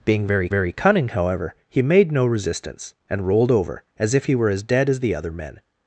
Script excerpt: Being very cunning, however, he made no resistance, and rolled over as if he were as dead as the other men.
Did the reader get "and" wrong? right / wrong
right